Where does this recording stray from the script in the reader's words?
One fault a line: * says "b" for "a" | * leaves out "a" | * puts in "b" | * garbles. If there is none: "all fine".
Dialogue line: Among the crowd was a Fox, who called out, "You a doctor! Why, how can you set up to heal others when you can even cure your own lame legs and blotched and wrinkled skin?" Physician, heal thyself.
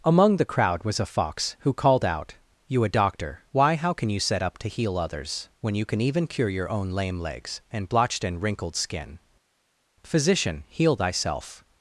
all fine